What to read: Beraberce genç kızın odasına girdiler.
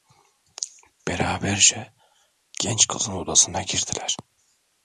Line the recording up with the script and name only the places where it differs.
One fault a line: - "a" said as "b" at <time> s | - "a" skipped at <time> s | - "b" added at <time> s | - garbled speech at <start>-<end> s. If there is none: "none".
none